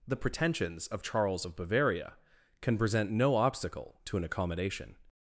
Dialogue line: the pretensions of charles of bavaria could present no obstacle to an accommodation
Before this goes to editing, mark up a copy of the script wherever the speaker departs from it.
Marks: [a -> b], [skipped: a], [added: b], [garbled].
the pretensions of charles of bavaria [could -> can] present no obstacle to an accommodation